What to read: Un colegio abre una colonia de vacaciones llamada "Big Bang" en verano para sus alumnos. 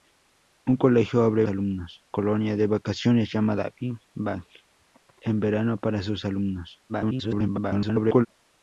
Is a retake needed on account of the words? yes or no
yes